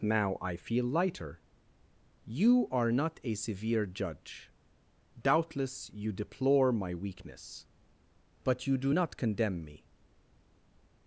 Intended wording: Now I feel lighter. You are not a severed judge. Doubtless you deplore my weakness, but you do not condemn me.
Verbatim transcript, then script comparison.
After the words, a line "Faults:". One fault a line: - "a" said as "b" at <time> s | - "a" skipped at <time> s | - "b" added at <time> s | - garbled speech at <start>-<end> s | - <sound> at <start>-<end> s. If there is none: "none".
Now I feel lighter. You are not a severe judge. Doubtless you deplore my weakness, but you do not condemn me.
Faults:
- "severed" said as "severe" at 3.4 s